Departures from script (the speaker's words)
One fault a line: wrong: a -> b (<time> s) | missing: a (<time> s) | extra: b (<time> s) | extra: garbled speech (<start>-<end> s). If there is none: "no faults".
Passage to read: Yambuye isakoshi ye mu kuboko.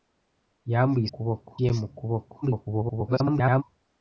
wrong: isakoshi -> kuboko (1.1 s)
extra: garbled speech (2.4-3.6 s)